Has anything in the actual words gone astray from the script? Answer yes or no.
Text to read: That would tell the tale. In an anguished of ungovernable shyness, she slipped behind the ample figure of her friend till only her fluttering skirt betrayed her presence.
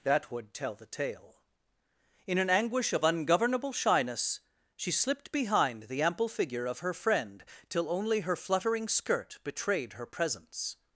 yes